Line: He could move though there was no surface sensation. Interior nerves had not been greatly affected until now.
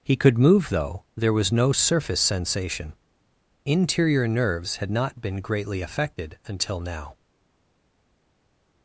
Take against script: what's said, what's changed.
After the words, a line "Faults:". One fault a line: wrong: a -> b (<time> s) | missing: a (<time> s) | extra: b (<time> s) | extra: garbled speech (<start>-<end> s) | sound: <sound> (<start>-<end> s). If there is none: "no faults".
He could move though there was no surface sensation. Interior nerves had not been greatly affected until now.
Faults:
no faults